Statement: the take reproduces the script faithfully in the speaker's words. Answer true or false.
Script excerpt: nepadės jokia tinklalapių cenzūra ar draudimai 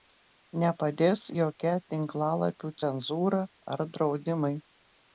true